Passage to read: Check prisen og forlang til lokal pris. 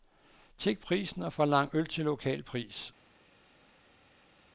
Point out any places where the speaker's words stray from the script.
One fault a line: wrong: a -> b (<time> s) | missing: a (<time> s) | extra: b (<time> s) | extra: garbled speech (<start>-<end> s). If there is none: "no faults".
extra: øl (1.7 s)